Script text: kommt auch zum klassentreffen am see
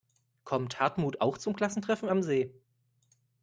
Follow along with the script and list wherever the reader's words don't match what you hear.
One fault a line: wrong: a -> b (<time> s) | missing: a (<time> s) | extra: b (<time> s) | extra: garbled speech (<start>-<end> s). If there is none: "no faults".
extra: hartmut (0.8 s)